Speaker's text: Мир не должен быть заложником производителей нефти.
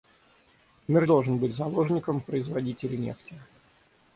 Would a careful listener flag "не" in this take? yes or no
yes